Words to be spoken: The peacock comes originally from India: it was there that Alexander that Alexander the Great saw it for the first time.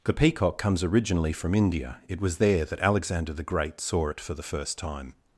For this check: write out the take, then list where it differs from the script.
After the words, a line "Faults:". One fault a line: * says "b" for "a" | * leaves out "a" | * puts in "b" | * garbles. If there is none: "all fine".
The peacock comes originally from India: it was there that Alexander the Great saw it for the first time.
Faults:
* leaves out "that Alexander"